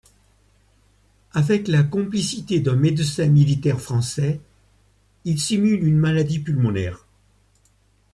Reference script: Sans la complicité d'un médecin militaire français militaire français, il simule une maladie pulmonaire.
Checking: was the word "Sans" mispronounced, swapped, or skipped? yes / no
yes